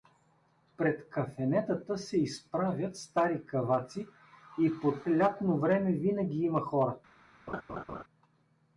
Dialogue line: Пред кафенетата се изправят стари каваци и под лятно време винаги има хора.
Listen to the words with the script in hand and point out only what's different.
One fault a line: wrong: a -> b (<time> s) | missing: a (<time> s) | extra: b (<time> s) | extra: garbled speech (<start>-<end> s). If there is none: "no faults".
no faults